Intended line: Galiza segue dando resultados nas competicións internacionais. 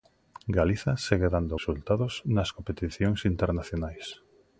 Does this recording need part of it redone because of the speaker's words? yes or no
no